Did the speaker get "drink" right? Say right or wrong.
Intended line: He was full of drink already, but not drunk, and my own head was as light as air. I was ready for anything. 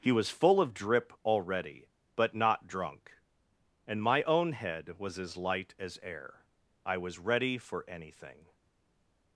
wrong